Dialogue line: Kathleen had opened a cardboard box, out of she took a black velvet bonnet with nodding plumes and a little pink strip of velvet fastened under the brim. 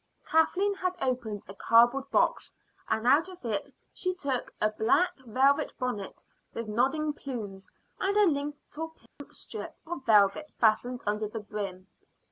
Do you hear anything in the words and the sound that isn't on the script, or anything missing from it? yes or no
yes